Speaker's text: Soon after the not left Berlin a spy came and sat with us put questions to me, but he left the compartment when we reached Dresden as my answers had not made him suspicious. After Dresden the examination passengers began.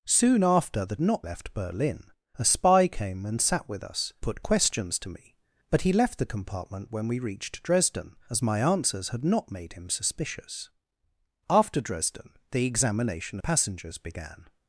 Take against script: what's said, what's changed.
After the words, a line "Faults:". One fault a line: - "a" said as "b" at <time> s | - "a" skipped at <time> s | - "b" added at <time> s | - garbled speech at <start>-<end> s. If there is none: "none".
Soon after the not left Berlin a spy came and sat with us put questions to me, but he left the compartment when we reached Dresden as my answers had not made him suspicious. After Dresden the examination passengers began.
Faults:
none